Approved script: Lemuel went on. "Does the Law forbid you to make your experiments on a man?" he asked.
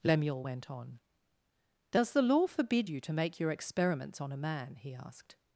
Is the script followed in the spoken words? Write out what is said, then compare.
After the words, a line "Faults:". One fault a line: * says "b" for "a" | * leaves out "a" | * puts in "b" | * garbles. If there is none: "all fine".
Lemuel went on. "Does the Law forbid you to make your experiments on a man?" he asked.
Faults:
all fine